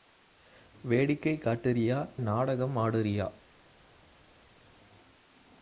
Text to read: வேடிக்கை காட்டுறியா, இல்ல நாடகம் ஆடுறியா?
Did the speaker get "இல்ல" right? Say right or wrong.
wrong